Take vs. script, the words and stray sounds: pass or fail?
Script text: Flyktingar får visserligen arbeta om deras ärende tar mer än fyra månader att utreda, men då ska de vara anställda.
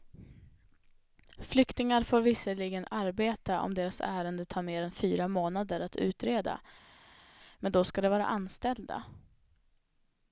pass